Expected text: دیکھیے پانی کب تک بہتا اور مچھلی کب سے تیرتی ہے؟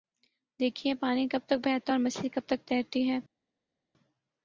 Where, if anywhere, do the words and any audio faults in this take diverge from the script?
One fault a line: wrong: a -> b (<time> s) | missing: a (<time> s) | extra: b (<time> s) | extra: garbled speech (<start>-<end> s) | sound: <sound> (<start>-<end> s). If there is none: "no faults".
wrong: سے -> تک (2.5 s)